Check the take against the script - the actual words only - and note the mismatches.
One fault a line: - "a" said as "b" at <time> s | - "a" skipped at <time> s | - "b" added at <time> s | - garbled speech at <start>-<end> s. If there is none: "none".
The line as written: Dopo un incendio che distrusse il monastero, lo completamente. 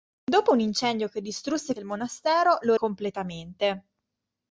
none